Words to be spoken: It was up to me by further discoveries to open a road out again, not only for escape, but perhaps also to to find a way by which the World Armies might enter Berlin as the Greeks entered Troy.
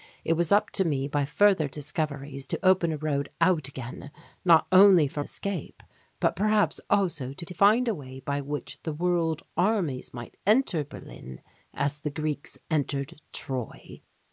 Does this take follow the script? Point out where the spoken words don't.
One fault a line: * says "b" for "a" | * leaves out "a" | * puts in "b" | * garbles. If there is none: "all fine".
all fine